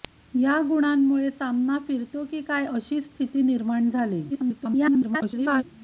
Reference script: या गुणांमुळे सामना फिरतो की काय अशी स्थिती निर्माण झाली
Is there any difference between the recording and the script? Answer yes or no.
yes